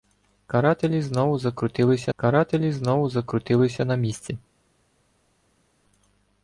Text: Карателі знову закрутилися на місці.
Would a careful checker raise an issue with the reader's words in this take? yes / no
yes